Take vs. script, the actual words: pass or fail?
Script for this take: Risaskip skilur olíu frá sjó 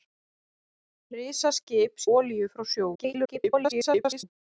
fail